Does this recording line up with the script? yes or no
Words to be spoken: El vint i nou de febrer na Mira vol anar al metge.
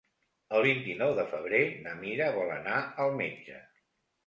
yes